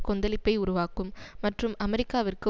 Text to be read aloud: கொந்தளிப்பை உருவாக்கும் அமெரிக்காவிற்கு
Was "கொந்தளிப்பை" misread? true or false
false